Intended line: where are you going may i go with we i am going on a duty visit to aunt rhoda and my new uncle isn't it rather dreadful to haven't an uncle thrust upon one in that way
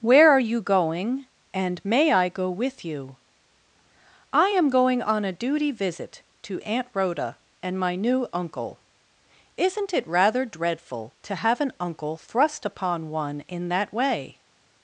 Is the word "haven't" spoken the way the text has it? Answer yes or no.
no